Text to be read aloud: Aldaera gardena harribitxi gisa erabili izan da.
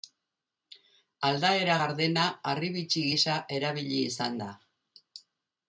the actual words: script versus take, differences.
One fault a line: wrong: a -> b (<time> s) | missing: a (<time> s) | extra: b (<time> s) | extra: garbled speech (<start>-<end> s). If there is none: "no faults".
no faults